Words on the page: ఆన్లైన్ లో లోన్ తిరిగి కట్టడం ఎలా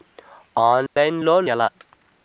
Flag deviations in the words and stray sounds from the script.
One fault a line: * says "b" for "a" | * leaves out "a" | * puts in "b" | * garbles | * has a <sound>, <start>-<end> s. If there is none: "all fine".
* has a dropout, 0.9-1.0 s
* leaves out "లోన్ తిరిగి కట్టడం"